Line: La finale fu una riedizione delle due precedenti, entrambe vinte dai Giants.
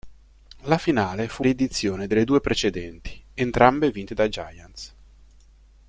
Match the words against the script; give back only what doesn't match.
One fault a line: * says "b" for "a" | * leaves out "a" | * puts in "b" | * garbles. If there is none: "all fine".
* leaves out "una"